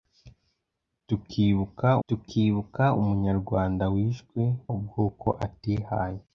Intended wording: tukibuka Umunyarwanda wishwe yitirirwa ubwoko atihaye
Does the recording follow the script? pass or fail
fail